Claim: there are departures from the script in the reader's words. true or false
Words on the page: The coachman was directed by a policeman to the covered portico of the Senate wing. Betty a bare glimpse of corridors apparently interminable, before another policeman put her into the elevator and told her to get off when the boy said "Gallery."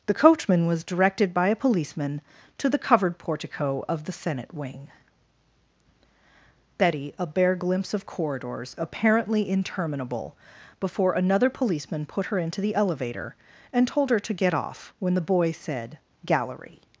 false